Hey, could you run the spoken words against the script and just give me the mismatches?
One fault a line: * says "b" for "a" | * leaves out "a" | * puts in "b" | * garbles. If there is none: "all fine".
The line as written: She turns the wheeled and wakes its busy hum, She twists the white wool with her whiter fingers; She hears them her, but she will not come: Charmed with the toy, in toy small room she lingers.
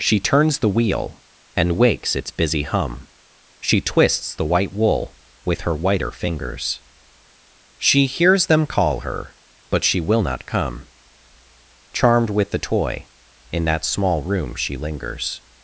* says "wheel" for "wheeled"
* puts in "call"
* says "that" for "toy"